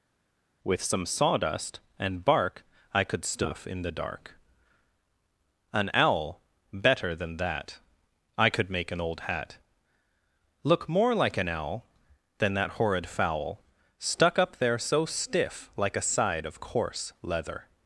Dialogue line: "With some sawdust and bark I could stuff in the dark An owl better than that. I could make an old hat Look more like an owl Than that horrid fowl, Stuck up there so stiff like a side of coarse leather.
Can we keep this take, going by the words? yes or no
yes